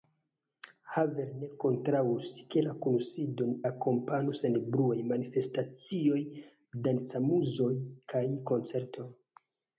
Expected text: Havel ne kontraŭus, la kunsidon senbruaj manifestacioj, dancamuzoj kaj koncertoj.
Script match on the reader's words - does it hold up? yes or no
no